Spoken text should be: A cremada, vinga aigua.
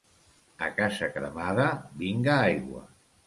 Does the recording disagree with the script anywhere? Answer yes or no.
yes